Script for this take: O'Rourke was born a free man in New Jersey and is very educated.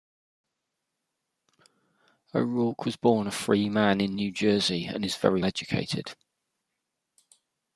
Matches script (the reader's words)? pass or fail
pass